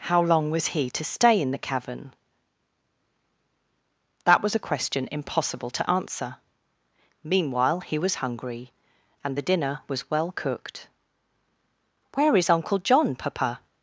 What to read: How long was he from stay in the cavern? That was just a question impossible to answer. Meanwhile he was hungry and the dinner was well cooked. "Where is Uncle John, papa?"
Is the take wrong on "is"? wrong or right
right